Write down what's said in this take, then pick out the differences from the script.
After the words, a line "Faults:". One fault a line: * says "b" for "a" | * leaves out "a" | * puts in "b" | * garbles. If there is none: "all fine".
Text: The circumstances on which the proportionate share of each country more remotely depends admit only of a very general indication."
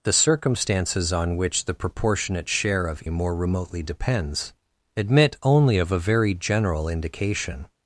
The circumstances on which the proportionate share of more remotely depends admit only of a very general indication."
Faults:
* leaves out "each country"